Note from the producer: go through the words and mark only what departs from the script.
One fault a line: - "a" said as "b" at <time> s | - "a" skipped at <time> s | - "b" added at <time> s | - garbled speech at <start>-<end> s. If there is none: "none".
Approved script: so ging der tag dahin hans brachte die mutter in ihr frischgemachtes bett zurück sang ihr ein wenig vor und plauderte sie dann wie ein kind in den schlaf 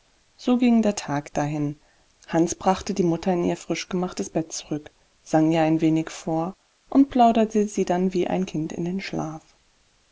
none